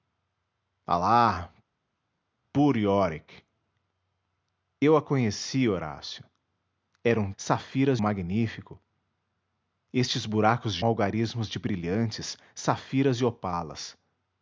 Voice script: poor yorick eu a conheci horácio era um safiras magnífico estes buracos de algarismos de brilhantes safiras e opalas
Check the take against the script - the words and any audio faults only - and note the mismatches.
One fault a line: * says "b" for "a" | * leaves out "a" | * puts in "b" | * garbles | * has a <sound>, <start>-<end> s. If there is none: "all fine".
all fine